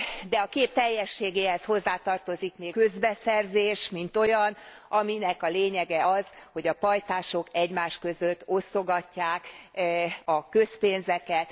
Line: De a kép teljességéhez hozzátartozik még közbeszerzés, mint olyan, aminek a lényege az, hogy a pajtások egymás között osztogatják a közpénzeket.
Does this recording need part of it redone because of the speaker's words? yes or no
no